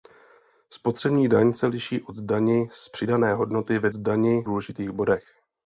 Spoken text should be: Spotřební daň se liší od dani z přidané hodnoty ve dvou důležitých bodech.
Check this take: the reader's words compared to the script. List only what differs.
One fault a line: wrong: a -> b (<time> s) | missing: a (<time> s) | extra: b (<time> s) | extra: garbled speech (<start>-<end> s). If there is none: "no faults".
wrong: dvou -> dani (3.9 s)